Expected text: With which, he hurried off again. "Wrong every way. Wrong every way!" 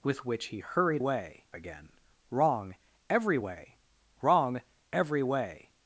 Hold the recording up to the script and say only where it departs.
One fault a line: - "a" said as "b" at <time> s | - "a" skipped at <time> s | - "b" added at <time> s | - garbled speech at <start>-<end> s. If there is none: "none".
- "off" said as "way" at 1.0 s